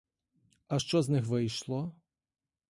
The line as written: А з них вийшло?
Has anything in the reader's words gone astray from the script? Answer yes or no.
yes